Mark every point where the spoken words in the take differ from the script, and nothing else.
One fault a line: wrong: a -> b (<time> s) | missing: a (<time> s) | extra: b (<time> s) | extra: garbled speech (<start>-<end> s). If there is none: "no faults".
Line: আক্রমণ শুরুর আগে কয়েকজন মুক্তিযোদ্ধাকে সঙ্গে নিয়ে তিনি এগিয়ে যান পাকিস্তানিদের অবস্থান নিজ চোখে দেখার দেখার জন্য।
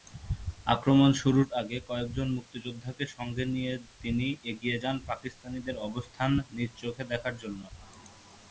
missing: দেখার (7.3 s)